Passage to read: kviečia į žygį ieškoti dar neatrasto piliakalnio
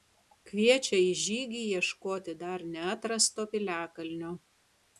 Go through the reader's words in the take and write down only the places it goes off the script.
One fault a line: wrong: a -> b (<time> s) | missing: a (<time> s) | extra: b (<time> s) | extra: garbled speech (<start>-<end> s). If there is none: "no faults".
no faults